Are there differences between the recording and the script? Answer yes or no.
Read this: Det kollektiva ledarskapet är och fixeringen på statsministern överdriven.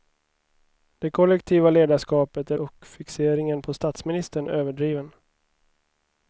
no